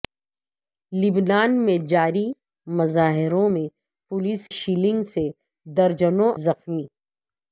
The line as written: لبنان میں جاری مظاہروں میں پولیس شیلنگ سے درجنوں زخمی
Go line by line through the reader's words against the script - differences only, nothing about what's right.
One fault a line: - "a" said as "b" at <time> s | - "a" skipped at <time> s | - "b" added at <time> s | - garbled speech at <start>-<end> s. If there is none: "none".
none